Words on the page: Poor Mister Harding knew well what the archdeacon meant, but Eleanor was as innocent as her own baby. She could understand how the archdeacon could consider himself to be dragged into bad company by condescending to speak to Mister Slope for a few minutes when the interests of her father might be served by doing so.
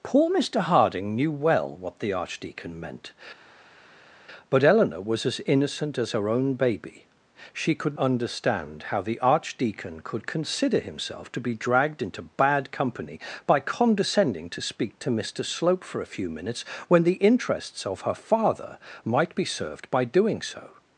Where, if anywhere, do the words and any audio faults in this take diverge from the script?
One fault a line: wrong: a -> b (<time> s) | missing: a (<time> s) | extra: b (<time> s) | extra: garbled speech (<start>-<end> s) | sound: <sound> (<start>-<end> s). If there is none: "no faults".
no faults